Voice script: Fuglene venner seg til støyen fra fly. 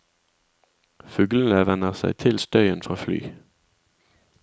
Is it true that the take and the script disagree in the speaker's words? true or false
false